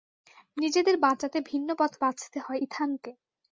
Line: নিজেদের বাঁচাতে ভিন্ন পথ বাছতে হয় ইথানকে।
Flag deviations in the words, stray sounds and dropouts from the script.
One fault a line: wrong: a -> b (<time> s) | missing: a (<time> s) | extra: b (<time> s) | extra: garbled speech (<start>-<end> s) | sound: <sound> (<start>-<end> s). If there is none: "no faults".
no faults